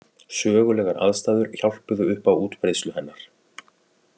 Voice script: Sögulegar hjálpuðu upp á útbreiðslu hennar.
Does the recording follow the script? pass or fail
fail